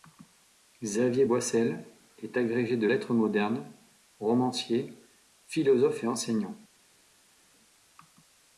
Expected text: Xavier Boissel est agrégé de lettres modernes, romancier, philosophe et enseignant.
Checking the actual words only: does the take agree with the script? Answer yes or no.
yes